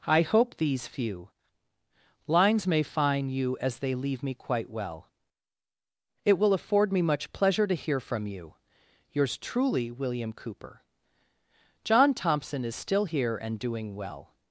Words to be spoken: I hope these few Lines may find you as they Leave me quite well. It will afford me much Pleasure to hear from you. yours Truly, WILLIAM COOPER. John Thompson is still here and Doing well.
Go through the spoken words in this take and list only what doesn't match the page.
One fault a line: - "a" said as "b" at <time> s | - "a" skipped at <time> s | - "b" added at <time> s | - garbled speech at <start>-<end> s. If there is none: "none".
none